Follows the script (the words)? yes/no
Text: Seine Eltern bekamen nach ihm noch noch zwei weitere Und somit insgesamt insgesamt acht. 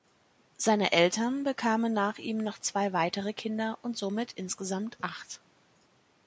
no